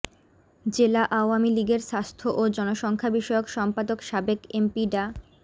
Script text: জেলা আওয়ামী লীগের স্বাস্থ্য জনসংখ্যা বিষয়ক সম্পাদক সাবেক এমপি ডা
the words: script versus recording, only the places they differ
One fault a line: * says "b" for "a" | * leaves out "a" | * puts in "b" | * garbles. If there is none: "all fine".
* puts in "ও"